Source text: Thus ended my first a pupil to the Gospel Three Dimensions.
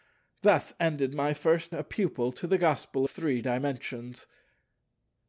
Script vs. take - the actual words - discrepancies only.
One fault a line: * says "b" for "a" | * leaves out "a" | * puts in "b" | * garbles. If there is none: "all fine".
all fine